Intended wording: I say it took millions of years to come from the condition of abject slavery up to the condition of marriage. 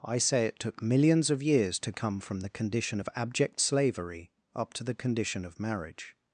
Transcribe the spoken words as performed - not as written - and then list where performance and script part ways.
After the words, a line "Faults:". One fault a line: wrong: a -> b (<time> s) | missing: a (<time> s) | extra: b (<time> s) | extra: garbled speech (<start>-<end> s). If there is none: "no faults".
I say it took millions of years to come from the condition of abject slavery up to the condition of marriage.
Faults:
no faults